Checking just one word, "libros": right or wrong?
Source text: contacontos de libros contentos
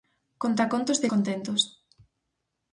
wrong